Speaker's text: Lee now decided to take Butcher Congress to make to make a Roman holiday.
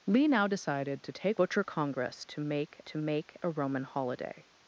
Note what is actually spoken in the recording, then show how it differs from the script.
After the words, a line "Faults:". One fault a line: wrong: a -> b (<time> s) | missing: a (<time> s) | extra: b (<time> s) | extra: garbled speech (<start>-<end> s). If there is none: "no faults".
Lee now decided to take Butcher Congress to make to make a Roman holiday.
Faults:
no faults